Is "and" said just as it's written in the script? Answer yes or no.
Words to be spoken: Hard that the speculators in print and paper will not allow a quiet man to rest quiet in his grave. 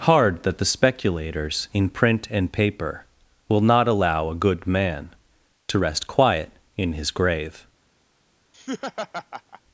yes